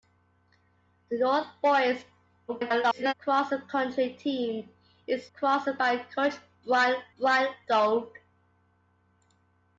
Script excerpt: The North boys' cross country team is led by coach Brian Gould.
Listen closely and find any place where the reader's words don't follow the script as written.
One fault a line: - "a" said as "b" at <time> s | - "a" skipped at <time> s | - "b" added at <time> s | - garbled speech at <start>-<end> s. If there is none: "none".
- garbled speech at 2.5-3.1 s
- "led" said as "cross" at 5.3 s
- "Brian" added at 7.2 s